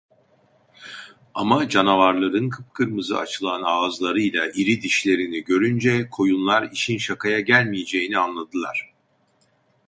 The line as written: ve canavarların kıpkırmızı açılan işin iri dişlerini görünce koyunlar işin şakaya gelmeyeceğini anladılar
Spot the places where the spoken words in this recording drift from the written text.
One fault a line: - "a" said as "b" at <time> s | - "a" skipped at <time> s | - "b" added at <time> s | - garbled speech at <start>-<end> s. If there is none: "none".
- "ve" said as "ama" at 1.3 s
- "işin" said as "ağızlarıyla" at 3.6 s